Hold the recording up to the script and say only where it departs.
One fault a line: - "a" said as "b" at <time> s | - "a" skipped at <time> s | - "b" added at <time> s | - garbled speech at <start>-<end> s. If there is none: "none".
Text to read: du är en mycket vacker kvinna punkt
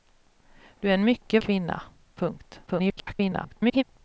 - "vacker" skipped at 1.4 s
- garbled speech at 2.7-3.8 s